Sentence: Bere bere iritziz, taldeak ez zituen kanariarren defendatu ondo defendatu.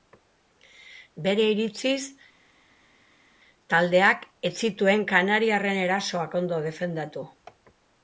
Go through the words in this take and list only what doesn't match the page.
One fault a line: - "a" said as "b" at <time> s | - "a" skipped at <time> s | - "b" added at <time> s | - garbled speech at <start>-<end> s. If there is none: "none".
- "bere" skipped at 1.4 s
- "defendatu" said as "erasoak" at 5.8 s